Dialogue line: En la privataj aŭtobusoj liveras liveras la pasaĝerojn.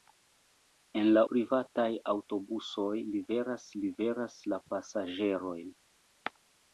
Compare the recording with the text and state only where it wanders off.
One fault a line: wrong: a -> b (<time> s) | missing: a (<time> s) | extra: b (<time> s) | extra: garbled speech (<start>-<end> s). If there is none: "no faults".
no faults